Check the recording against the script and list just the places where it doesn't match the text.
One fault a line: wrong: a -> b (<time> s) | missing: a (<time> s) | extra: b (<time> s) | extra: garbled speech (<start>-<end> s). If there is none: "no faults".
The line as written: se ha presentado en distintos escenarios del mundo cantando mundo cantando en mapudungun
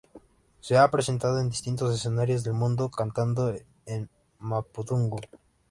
missing: mundo cantando (3.5 s)